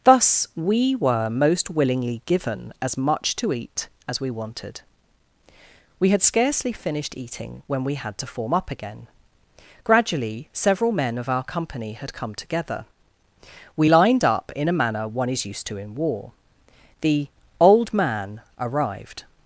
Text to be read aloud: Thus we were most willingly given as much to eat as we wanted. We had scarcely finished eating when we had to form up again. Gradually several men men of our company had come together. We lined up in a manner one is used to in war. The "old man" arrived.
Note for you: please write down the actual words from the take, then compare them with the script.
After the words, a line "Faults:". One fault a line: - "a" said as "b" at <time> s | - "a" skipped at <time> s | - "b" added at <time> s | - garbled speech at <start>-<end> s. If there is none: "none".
Thus we were most willingly given as much to eat as we wanted. We had scarcely finished eating when we had to form up again. Gradually several men of our company had come together. We lined up in a manner one is used to in war. The "old man" arrived.
Faults:
- "men" skipped at 11.2 s